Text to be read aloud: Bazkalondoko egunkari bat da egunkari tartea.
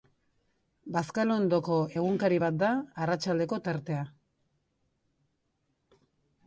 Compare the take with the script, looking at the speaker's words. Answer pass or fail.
fail